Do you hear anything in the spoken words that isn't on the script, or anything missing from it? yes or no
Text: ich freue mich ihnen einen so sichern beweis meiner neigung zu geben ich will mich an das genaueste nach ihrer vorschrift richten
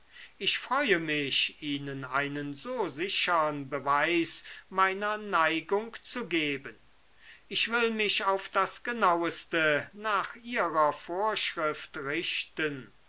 yes